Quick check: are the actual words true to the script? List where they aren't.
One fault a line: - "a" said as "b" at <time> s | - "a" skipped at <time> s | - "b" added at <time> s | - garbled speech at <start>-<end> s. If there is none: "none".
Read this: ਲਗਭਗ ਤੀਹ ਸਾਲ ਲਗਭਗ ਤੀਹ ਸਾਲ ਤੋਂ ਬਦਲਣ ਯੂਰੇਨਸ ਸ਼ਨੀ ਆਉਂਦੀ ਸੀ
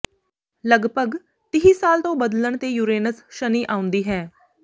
- "ਲਗਭਗ ਤੀਹ ਸਾਲ" skipped at 2.0 s
- "ਤੇ" added at 2.5 s
- "ਸੀ" said as "ਹੈ" at 4.0 s